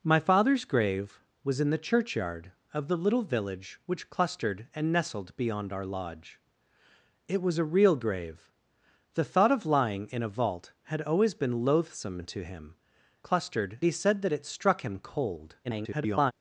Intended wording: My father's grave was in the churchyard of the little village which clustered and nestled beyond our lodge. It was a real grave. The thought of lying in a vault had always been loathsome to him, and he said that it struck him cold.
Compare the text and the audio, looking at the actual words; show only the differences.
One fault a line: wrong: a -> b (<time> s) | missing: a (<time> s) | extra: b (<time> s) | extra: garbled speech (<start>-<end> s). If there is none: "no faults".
wrong: and -> clustered (13.2 s)
extra: garbled speech (15.6-16.3 s)